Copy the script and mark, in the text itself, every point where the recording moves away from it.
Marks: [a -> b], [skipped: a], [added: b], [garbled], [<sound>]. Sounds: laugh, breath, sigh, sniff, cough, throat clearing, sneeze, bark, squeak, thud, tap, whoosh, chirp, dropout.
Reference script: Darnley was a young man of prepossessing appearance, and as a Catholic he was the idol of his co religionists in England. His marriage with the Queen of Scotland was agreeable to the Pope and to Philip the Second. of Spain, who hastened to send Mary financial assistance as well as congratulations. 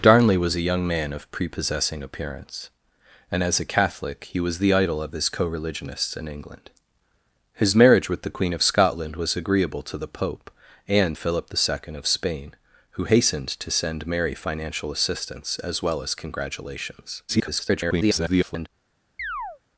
Darnley was a young man of prepossessing appearance, and as a Catholic he was the idol of his co religionists in England. His marriage with the Queen of Scotland was agreeable to the Pope and [skipped: to] Philip the Second. of Spain, who hastened to send Mary financial assistance as well as congratulations. [garbled] [chirp]